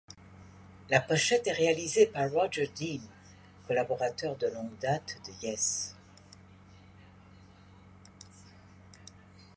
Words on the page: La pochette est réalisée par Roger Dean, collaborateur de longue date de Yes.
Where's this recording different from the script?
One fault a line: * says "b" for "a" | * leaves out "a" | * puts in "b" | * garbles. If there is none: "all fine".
all fine